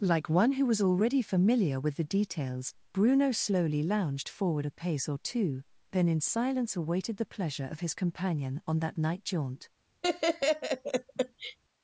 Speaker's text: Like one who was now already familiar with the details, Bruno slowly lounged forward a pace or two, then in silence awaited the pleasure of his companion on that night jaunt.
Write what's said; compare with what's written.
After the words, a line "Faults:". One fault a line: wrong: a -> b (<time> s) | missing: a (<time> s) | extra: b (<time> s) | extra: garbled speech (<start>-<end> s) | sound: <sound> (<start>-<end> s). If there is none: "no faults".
Like one who was already familiar with the details, Bruno slowly lounged forward a pace or two, then in silence awaited the pleasure of his companion on that night jaunt.
Faults:
missing: now (0.8 s)
sound: laugh (10.0-11.6 s)